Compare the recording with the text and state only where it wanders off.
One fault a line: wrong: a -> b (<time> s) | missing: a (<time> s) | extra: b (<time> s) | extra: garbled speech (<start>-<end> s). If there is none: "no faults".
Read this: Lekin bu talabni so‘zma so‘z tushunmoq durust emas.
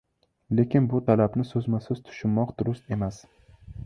no faults